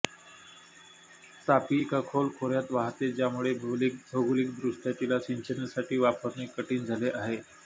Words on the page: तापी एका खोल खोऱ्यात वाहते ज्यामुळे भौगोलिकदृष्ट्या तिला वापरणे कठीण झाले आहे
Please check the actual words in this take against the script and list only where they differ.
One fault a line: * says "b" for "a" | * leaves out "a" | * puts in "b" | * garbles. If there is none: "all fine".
* puts in "सिंचनासाठी"